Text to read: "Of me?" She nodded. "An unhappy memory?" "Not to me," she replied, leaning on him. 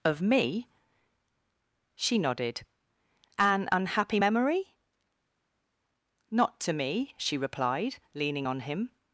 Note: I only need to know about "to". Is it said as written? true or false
true